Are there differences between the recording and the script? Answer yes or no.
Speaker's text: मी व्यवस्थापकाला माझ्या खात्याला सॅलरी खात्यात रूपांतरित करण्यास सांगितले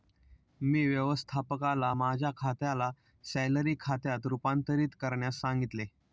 no